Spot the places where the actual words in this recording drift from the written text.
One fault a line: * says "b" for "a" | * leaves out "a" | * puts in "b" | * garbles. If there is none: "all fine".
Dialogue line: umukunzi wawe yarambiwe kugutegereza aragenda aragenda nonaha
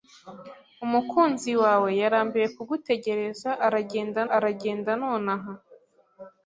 all fine